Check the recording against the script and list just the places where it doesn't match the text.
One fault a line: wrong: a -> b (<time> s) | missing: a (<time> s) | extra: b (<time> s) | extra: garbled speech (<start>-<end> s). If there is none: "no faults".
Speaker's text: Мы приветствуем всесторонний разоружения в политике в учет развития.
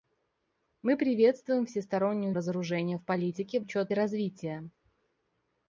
no faults